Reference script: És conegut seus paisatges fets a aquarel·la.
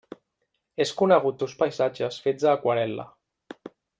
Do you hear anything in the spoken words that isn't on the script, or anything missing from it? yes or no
no